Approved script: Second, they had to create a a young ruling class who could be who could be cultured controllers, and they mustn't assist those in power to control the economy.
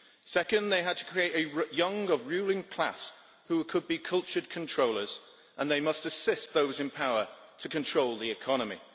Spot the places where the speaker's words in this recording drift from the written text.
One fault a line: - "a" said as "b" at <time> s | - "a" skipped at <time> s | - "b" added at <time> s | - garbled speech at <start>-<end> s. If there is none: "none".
- "a" skipped at 1.8 s
- "who could be" skipped at 4.0 s
- "mustn't" said as "must" at 5.8 s